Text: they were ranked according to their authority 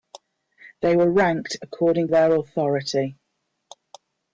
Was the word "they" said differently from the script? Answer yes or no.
no